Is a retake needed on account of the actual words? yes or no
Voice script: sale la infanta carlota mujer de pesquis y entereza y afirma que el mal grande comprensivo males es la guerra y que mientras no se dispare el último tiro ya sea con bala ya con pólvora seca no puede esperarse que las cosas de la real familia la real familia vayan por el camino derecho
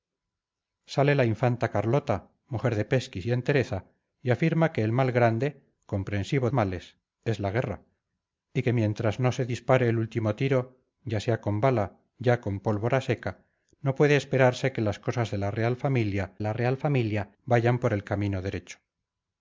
no